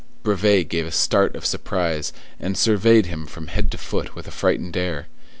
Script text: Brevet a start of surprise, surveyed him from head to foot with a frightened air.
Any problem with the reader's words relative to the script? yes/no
yes